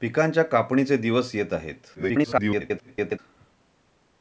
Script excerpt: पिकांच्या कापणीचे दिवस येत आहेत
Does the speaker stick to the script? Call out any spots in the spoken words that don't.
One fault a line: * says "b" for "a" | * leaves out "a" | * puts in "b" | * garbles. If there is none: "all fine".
* garbles